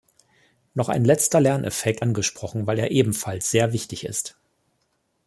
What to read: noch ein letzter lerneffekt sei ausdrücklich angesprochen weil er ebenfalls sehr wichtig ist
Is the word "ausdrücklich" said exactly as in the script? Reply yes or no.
no